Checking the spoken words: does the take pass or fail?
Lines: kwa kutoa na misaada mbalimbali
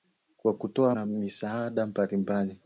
pass